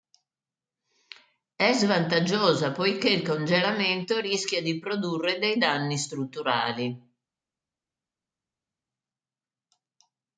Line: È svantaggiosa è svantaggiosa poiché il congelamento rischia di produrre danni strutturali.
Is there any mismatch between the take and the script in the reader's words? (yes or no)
yes